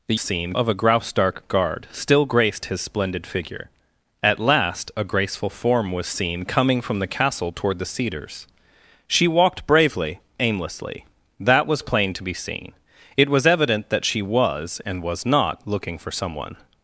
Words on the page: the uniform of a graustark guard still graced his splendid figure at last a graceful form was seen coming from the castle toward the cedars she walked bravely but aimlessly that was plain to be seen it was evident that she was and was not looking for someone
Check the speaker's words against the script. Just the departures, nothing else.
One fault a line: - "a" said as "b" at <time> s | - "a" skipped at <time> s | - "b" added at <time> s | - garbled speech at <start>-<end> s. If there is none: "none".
- "uniform" said as "seen" at 0.2 s
- "but" skipped at 10.2 s